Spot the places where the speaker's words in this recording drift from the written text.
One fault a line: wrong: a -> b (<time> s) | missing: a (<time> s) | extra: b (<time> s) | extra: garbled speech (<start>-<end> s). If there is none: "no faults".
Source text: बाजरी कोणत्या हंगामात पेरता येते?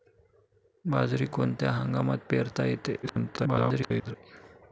extra: garbled speech (3.0-4.2 s)